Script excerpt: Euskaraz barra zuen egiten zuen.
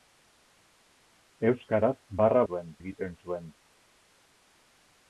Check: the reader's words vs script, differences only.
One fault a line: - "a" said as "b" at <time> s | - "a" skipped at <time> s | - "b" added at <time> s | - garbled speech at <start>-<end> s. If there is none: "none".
none